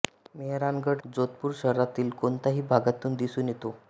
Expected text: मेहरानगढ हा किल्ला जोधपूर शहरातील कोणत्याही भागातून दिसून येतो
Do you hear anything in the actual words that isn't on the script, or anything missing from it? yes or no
yes